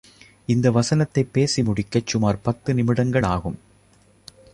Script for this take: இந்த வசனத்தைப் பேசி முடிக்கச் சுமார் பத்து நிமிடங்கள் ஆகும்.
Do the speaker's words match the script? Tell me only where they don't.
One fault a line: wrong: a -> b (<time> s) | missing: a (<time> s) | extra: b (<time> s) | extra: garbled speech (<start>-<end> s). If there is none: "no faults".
no faults